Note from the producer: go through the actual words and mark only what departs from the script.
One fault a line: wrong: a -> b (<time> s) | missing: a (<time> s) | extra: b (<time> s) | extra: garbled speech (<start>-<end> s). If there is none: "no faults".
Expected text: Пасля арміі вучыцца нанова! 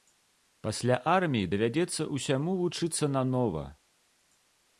extra: давядзецца ўсяму (1.5 s)